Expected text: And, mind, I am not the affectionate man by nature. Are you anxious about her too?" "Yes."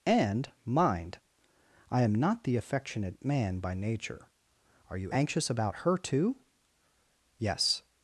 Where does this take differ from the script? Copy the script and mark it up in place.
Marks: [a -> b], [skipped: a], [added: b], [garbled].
And, mind, I am not the affectionate man by nature. Are you anxious about her too?" "Yes."